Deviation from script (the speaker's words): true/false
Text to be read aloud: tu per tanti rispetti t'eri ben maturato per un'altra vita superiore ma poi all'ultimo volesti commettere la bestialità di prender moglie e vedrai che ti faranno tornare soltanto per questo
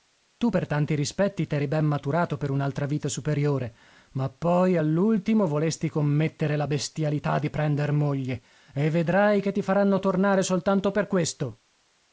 false